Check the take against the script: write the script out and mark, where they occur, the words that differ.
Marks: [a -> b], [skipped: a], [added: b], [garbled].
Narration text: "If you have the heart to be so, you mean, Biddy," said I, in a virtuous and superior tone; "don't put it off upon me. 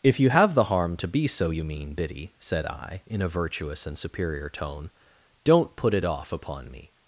"If you have the [heart -> harm] to be so, you mean, Biddy," said I, in a virtuous and superior tone; "don't put it off upon me.